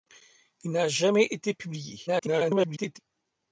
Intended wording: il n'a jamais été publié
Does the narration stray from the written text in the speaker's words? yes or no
yes